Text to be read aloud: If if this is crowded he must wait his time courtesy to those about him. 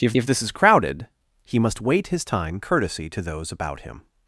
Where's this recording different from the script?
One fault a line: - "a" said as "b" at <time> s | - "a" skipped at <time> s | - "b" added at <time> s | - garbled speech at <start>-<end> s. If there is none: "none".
none